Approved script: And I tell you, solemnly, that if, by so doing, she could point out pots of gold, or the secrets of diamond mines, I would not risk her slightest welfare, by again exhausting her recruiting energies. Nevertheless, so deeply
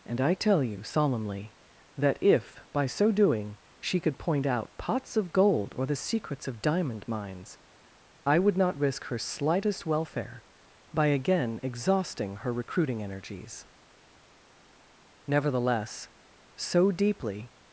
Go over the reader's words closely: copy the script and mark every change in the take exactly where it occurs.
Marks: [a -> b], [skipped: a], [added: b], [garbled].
And I tell you, solemnly, that if, by so doing, she could point out pots of gold, or the secrets of diamond mines, I would not risk her slightest welfare, by again exhausting her recruiting energies. Nevertheless, so deeply